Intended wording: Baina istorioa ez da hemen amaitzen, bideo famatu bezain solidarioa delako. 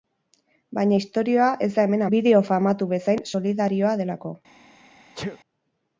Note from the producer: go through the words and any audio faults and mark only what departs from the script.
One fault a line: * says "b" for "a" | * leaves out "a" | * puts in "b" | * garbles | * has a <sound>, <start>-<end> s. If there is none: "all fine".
* leaves out "amaitzen"
* has a sneeze, 5.1-5.4 s